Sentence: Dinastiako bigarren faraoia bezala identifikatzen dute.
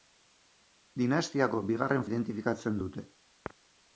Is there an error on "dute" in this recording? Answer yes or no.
no